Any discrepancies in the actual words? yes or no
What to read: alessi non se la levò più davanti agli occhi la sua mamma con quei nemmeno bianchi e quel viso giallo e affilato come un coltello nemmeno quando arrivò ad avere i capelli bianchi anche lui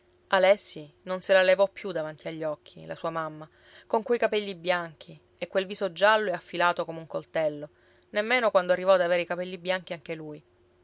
yes